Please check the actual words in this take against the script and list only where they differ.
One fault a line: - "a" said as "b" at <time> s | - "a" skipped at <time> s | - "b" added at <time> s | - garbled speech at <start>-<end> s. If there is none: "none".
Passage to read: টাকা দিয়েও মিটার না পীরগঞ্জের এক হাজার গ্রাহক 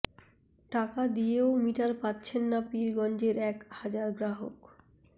- "পাচ্ছেন" added at 2.0 s